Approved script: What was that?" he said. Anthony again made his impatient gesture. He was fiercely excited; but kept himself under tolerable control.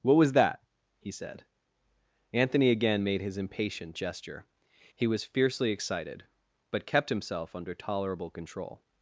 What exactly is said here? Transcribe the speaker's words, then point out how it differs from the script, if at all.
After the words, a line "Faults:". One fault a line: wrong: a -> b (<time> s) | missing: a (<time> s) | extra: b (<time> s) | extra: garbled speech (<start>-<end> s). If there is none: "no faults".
What was that?" he said. Anthony again made his impatient gesture. He was fiercely excited; but kept himself under tolerable control.
Faults:
no faults